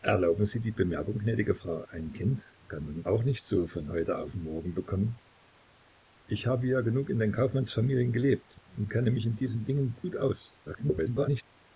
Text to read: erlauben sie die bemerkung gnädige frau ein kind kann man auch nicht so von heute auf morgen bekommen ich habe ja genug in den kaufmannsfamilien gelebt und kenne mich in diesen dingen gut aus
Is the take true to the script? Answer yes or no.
no